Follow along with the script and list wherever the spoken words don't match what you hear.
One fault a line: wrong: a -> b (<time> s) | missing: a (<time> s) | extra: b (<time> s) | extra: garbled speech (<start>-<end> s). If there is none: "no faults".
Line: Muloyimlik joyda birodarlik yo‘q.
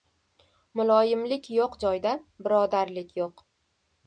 extra: yo‘q (1.6 s)